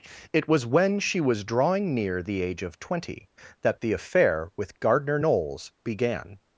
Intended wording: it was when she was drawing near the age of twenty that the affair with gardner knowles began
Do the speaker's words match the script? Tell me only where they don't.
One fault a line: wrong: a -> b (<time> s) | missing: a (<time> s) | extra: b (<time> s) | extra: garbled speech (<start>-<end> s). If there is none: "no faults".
no faults